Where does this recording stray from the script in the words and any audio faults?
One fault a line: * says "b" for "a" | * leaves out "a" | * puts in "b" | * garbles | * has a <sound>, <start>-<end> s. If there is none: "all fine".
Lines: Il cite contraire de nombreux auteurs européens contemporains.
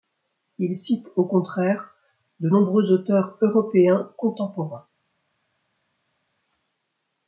* puts in "au"